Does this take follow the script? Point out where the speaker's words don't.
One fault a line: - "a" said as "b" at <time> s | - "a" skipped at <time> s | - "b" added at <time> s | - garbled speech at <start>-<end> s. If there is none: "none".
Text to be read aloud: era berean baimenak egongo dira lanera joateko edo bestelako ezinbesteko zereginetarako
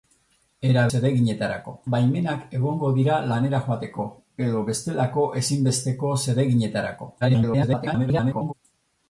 - "berean" said as "zereginetarako" at 0.9 s
- garbled speech at 7.2-8.5 s